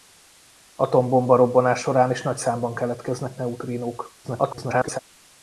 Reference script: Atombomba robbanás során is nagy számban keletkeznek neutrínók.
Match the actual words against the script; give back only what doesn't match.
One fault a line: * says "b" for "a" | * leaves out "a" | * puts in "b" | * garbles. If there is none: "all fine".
* garbles